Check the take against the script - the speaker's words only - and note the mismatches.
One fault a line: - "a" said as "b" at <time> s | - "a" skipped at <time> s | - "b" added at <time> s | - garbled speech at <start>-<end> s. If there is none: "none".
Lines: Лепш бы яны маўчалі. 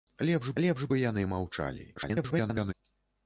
- "лепш" added at 0.6 s
- garbled speech at 2.0-2.7 s